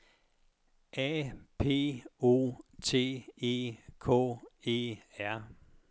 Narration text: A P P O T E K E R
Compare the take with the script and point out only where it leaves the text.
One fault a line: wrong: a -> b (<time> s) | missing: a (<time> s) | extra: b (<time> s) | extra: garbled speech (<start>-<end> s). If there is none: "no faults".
missing: P (2.0 s)